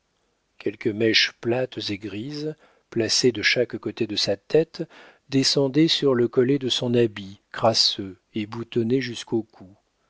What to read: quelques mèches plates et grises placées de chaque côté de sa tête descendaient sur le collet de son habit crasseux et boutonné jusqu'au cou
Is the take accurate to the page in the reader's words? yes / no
yes